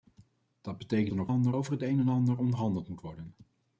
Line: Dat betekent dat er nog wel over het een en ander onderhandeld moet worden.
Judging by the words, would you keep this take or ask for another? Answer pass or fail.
fail